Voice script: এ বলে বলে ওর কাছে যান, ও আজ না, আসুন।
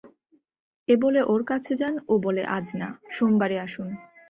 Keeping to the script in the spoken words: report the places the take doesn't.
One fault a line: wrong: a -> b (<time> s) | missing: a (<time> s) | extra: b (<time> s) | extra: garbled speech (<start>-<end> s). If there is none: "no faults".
missing: বলে (1.2 s)
extra: বলে (2.2 s)
extra: সোমবারে (3.2 s)